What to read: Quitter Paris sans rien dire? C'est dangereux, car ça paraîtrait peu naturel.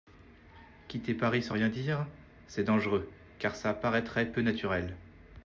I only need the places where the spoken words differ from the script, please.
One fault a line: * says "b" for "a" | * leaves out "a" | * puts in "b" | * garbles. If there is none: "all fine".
all fine